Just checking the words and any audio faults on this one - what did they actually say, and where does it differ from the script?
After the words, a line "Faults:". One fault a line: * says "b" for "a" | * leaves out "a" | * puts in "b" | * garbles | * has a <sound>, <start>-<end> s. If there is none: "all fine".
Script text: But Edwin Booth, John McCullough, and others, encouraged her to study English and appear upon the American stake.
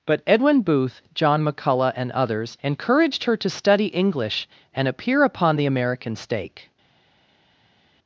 But Edwin Booth, John McCullough, and others, encouraged her to study English and appear upon the American stake.
Faults:
all fine